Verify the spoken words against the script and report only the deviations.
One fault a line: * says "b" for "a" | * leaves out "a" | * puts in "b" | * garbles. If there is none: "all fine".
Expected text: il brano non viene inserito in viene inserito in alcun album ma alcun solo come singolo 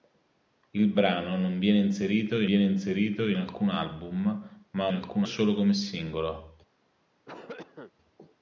all fine